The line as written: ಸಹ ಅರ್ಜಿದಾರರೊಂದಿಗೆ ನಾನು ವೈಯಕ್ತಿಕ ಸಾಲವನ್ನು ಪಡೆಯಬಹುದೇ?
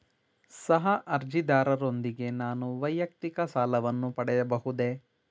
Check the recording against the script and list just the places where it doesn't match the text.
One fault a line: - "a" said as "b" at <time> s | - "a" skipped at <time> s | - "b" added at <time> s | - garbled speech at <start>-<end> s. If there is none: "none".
none